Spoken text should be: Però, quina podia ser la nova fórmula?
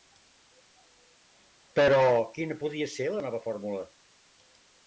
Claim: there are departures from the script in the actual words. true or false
false